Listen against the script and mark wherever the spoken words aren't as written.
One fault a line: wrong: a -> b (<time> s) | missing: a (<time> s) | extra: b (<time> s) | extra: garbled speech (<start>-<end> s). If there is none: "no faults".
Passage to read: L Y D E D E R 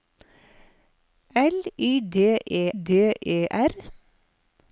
no faults